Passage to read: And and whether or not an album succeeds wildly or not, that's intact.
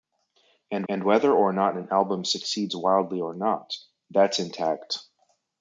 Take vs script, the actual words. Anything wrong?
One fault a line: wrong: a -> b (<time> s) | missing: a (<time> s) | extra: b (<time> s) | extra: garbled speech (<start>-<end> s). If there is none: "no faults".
no faults